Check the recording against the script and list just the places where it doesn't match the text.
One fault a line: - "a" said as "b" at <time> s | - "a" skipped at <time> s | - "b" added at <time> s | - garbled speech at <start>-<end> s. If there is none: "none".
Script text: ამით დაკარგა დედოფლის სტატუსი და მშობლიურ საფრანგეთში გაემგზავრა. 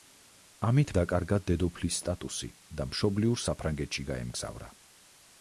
none